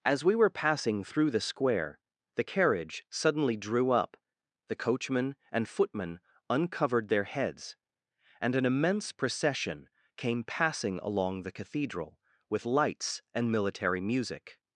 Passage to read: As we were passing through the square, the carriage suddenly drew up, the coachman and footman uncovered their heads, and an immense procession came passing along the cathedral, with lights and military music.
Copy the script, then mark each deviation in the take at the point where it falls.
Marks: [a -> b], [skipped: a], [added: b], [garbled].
As we were passing through the square, the carriage suddenly drew up, the coachman and footman uncovered their heads, and an immense procession came passing along the cathedral, with lights and military music.